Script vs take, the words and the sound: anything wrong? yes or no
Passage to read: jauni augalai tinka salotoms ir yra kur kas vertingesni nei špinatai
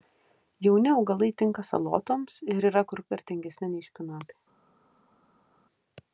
yes